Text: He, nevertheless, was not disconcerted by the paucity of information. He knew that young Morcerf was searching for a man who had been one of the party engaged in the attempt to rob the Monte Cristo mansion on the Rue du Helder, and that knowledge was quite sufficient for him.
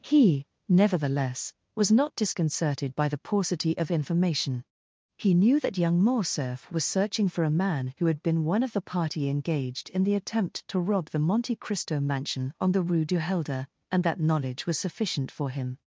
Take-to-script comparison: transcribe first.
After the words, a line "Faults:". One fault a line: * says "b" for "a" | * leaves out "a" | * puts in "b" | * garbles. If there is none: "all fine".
He, nevertheless, was not disconcerted by the paucity of information. He knew that young Morcerf was searching for a man who had been one of the party engaged in the attempt to rob the Monte Cristo mansion on the Rue du Helder, and that knowledge was sufficient for him.
Faults:
* leaves out "quite"